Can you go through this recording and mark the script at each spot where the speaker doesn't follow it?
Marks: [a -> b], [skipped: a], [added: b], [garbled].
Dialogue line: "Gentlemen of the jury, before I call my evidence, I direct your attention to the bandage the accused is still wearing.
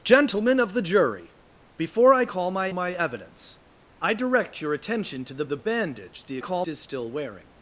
"Gentlemen of the jury, before I call my [added: my] evidence, I direct your attention to the [added: the] bandage the [accused -> call] is still wearing.